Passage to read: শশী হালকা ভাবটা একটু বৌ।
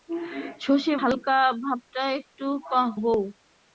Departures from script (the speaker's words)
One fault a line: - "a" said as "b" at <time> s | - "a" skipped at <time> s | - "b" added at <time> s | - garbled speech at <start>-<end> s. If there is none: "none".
none